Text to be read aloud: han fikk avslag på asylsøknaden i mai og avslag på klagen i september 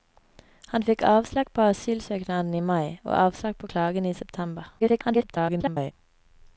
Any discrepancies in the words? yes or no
yes